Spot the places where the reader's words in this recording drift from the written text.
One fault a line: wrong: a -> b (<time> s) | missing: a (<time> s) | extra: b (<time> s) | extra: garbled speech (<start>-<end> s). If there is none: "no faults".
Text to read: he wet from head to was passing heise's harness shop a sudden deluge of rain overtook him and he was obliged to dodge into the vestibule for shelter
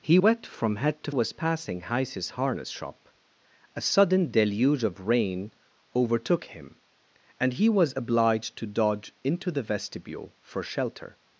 no faults